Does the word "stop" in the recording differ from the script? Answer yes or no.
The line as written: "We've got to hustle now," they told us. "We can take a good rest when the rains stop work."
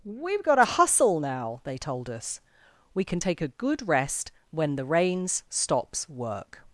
yes